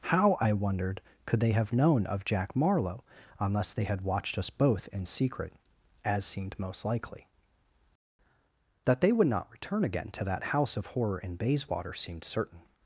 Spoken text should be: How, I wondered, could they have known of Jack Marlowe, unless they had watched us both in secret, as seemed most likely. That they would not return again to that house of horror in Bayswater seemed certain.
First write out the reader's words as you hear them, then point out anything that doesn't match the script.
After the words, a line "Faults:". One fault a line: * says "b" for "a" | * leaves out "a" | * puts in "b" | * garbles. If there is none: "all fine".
How, I wondered, could they have known of Jack Marlowe, unless they had watched us both in secret, as seemed most likely. That they would not return again to that house of horror in Bayswater seemed certain.
Faults:
all fine